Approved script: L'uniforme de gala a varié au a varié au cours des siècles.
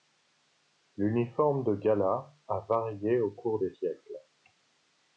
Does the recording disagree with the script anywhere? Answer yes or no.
yes